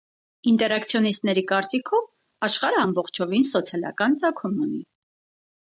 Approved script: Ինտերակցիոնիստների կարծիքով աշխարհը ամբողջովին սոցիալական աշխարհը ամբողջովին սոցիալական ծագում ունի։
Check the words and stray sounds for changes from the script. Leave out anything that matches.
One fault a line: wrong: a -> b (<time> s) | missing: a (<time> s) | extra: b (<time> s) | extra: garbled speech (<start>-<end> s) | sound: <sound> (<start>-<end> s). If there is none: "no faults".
missing: աշխարհը ամբողջովին սոցիալական (4.2 s)